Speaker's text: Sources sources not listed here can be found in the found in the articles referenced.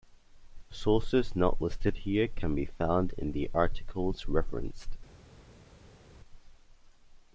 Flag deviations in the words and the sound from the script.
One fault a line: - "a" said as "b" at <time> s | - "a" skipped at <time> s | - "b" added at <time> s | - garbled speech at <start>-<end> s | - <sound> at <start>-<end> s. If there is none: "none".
- "sources" skipped at 1.4 s
- "found in the" skipped at 3.5 s